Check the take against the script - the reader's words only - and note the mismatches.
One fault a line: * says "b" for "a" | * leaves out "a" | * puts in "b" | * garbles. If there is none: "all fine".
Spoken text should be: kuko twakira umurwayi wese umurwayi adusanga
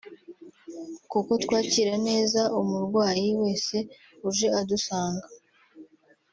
* puts in "neza"
* says "uje" for "umurwayi"